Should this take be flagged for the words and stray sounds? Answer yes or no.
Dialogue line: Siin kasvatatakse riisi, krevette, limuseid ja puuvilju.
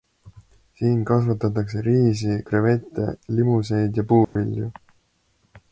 yes